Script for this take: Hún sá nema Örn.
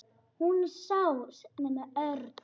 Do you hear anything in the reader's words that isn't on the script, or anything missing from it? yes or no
no